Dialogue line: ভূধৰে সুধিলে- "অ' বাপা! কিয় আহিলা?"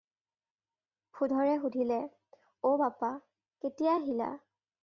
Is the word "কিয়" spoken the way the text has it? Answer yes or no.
no